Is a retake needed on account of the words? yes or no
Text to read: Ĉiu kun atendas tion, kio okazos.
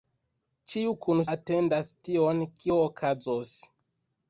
no